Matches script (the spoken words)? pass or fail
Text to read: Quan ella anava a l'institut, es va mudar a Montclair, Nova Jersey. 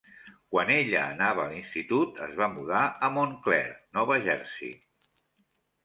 pass